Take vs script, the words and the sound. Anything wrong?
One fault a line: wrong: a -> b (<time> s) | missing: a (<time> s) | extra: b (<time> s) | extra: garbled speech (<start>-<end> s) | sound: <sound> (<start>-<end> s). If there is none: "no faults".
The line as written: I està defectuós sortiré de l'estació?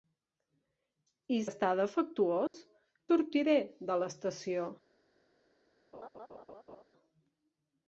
sound: dropout (2.5-2.5 s)
sound: laugh (5.9-6.8 s)